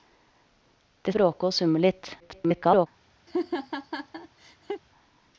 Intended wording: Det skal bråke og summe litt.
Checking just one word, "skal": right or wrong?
wrong